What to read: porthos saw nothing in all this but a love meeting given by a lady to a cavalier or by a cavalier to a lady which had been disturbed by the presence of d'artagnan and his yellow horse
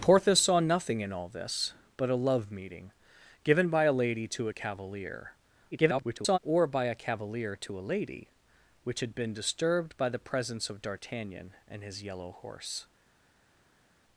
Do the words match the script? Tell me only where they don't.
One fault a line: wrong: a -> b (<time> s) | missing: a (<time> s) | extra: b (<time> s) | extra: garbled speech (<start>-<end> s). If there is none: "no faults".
extra: garbled speech (5.7-6.4 s)